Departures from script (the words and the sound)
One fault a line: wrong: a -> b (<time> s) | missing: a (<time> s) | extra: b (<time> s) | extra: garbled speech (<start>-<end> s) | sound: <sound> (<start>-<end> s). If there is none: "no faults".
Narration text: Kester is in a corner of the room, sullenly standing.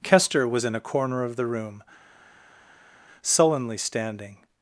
wrong: is -> was (0.5 s)